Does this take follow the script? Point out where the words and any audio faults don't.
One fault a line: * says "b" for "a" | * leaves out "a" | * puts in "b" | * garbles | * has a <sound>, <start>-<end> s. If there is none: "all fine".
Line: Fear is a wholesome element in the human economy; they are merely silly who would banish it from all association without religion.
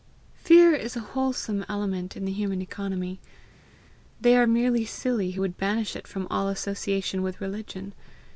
* says "with" for "without"